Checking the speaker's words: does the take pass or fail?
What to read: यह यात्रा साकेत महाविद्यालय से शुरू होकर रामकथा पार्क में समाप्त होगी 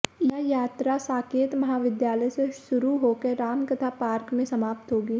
pass